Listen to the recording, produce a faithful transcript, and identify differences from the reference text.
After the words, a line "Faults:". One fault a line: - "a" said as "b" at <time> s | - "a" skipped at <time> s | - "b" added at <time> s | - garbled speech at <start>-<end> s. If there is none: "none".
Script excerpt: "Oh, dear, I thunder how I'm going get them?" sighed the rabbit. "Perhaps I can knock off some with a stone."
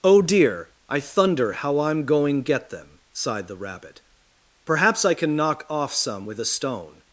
"Oh, dear, I thunder how I'm going get them?" sighed the rabbit. "Perhaps I can knock off some with a stone."
Faults:
none